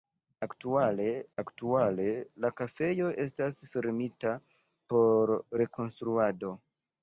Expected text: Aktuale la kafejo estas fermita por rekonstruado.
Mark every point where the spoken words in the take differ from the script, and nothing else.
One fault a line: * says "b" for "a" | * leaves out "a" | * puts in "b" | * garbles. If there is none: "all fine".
* puts in "aktuale"